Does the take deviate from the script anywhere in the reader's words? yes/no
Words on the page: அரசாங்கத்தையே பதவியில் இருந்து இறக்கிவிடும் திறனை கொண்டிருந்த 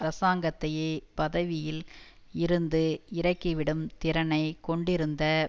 no